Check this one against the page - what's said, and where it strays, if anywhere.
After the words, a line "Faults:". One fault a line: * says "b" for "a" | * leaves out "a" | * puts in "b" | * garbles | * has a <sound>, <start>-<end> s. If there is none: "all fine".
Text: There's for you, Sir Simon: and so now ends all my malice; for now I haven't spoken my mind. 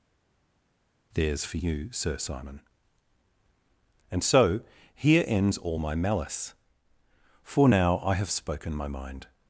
There's for you, Sir Simon: and so here ends all my malice; for now I have spoken my mind.
Faults:
* says "here" for "now"
* says "have" for "haven't"